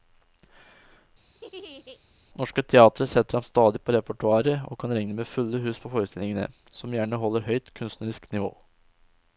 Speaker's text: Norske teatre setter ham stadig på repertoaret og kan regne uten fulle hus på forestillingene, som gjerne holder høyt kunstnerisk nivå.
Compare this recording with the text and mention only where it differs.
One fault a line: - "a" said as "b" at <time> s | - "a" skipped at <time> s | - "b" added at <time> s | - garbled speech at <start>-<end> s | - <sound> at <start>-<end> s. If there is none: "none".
- laugh at 1.3-2.0 s
- "uten" said as "med" at 5.2 s